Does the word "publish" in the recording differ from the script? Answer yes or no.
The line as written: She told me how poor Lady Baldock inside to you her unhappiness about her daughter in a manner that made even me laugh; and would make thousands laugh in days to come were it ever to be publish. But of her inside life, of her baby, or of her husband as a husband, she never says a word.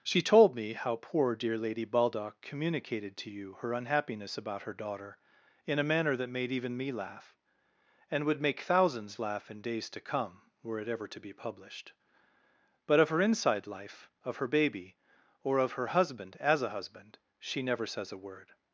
yes